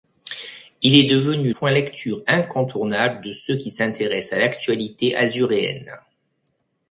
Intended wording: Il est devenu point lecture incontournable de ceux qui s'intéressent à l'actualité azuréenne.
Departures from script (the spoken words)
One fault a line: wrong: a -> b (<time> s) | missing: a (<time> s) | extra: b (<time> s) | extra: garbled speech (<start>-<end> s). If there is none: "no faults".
no faults